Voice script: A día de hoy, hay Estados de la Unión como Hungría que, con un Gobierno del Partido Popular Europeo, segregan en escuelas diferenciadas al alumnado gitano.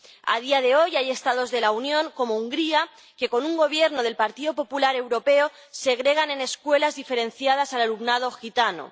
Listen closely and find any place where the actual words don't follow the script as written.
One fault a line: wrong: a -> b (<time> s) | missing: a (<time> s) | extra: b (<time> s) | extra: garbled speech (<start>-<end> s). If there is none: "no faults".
no faults